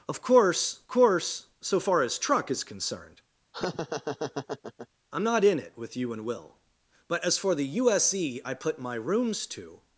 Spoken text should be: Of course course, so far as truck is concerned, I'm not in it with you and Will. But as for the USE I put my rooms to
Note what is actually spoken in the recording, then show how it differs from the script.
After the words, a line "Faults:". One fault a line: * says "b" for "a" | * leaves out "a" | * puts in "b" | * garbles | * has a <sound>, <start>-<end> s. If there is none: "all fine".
Of course course, so far as truck is concerned, I'm not in it with you and Will. But as for the USE I put my rooms to
Faults:
* has a laugh, 3.5-4.9 s